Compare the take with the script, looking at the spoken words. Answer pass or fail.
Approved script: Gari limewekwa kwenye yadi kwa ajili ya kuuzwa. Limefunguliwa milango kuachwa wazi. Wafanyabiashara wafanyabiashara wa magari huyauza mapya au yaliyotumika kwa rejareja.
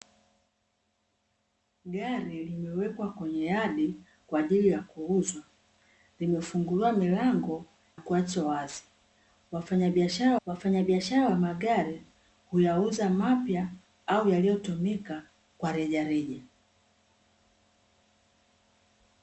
pass